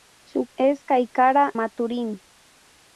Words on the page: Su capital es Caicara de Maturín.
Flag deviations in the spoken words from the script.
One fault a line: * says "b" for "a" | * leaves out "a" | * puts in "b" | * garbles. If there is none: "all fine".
* leaves out "capital"
* leaves out "de"